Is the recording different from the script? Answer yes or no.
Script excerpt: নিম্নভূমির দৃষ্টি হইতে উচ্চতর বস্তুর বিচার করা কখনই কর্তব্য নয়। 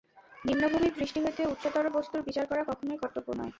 no